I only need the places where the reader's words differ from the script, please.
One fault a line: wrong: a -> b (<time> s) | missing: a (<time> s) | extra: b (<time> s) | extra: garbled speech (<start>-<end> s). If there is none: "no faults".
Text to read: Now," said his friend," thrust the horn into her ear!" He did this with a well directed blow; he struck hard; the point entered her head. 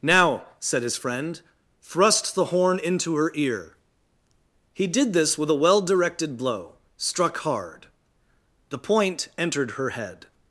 missing: he (6.8 s)